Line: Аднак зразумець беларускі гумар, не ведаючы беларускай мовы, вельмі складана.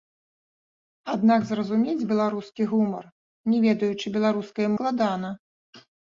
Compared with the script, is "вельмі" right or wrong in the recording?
wrong